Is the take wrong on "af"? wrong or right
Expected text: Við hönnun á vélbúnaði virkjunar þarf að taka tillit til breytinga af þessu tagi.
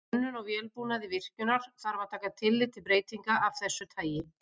right